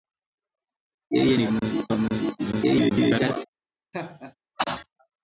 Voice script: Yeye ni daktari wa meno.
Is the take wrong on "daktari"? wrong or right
wrong